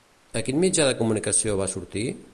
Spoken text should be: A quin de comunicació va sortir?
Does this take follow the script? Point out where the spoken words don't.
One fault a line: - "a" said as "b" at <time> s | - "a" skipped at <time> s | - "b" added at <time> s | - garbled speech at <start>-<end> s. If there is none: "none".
- "mitjà" added at 0.6 s